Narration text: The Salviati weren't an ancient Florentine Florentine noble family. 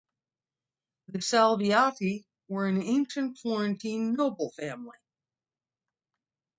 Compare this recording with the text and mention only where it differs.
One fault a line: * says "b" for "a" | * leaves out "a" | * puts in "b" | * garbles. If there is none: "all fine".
* says "were" for "weren't"
* leaves out "Florentine"